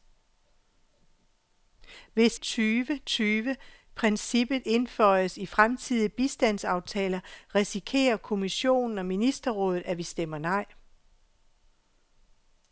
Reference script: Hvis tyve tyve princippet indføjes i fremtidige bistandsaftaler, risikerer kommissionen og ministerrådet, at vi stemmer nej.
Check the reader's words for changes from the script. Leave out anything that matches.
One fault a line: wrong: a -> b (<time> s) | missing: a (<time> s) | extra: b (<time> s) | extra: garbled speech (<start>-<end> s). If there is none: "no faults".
no faults